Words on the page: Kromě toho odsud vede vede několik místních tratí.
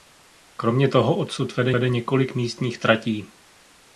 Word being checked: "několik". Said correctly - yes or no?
yes